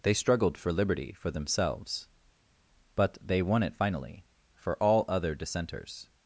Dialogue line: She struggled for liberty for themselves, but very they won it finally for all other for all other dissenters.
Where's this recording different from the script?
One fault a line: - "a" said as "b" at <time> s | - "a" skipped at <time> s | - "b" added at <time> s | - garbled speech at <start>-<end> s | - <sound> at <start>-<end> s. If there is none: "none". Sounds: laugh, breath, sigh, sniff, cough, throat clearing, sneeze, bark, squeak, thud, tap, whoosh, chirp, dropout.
- "She" said as "They" at 0.0 s
- "very" skipped at 3.2 s
- "for all other" skipped at 5.3 s